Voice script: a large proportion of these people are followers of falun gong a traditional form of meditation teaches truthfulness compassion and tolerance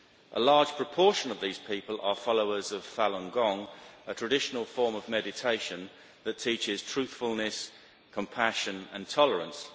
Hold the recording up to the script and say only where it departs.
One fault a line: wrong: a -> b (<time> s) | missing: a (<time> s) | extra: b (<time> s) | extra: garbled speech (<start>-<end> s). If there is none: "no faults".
extra: that (6.2 s)